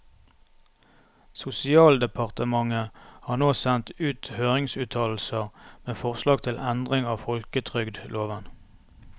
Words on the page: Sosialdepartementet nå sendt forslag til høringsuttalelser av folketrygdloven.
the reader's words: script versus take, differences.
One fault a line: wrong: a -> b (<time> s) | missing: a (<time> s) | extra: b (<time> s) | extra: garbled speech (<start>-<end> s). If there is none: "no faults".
extra: har (3.3 s)
extra: ut høringsuttalelser med (4.0 s)
wrong: høringsuttalelser -> endring (6.7 s)